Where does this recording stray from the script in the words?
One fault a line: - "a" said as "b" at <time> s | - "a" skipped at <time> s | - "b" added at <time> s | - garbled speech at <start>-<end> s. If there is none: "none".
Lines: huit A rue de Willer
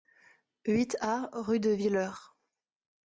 none